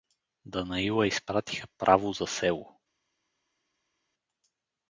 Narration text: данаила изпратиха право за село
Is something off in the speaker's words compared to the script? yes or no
no